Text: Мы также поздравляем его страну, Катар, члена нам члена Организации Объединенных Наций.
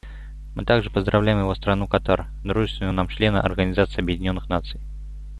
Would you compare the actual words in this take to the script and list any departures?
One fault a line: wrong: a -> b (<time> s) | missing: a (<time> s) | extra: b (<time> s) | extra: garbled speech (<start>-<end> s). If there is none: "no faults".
wrong: члена -> дружественного (2.4 s)